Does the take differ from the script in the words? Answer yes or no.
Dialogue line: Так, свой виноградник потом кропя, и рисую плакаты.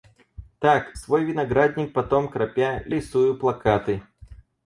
no